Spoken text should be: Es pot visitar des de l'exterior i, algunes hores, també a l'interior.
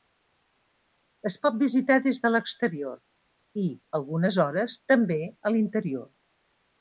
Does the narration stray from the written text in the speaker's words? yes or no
no